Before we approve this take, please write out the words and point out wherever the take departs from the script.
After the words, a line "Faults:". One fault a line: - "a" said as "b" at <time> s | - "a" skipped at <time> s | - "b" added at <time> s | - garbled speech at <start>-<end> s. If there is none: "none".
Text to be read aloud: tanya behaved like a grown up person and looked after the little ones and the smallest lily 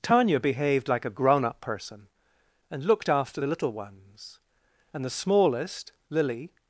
tanya behaved like a grown up person and looked after the little ones and the smallest lily
Faults:
none